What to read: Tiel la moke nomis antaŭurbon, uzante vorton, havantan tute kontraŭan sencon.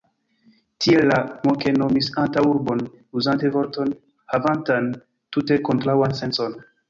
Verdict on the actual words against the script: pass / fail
pass